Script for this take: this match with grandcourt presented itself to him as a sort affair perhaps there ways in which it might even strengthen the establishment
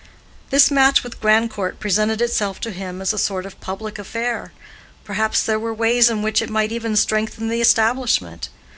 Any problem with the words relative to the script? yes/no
yes